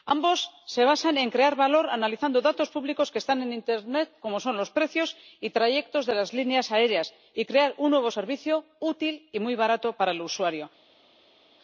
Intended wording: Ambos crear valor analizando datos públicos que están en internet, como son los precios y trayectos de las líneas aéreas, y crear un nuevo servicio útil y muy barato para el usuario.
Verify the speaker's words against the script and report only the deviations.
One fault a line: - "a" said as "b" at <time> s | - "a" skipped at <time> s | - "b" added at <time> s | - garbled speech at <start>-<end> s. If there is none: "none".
- "se basan en" added at 0.7 s